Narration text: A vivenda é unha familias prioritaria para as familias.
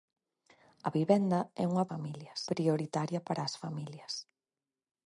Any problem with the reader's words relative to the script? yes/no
no